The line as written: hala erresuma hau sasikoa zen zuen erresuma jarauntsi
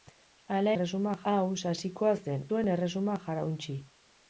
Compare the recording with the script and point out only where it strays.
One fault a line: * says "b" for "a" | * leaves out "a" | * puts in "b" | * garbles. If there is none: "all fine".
all fine